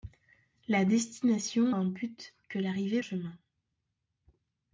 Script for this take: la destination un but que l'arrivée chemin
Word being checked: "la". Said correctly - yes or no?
yes